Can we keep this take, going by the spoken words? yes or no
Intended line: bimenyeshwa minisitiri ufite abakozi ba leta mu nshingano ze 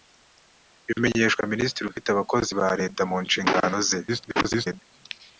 no